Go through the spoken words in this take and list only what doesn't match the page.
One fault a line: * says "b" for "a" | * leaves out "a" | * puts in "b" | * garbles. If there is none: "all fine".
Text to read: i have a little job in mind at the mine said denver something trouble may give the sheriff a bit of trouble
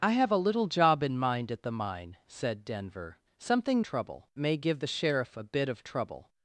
all fine